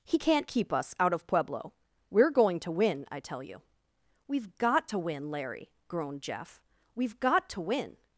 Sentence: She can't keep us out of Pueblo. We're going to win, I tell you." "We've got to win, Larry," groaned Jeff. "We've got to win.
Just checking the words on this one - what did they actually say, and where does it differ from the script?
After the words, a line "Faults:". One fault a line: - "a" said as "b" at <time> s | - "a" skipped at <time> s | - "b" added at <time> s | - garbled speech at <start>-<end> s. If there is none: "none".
He can't keep us out of Pueblo. We're going to win, I tell you." "We've got to win, Larry," groaned Jeff. "We've got to win.
Faults:
- "She" said as "He" at 0.0 s